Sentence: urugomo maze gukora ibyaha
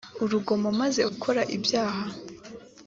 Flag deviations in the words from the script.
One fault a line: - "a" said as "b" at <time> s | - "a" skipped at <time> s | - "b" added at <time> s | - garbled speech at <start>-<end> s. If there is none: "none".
none